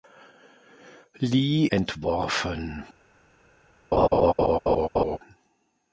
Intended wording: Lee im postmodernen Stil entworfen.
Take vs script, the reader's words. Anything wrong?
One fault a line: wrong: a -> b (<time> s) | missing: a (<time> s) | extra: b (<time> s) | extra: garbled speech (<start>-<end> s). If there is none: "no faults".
missing: im postmodernen Stil (1.7 s)